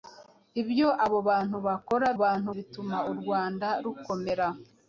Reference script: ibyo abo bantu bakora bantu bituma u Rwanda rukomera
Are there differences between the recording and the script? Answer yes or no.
no